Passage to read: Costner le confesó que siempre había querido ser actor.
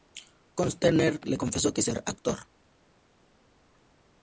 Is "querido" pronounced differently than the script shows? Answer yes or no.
yes